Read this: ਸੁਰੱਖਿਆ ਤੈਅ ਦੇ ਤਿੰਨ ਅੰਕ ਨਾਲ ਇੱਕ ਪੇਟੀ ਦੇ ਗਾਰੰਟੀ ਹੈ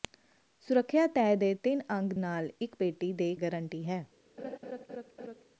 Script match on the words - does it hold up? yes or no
yes